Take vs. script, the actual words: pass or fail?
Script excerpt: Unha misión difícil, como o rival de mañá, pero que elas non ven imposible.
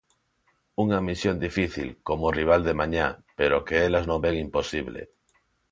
pass